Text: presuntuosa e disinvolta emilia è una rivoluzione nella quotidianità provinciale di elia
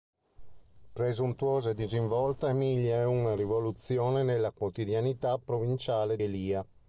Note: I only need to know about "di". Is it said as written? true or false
false